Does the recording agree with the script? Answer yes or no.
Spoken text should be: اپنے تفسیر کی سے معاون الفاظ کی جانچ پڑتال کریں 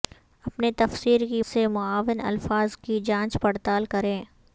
yes